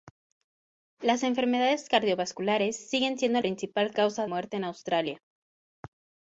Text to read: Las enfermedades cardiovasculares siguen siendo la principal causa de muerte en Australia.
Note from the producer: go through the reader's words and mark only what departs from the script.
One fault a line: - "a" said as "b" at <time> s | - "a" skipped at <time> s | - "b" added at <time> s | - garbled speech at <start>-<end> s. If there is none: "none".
- "la" skipped at 3.4 s
- "de" skipped at 4.3 s